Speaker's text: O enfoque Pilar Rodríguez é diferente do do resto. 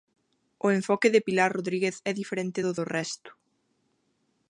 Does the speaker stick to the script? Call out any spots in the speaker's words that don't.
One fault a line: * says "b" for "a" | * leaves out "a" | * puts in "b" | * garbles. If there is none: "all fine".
* puts in "de"